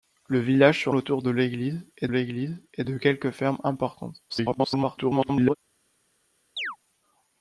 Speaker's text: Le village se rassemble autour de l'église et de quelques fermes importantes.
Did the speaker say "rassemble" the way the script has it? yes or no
no